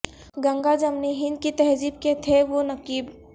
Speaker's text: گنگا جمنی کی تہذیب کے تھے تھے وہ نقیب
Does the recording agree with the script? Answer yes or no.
no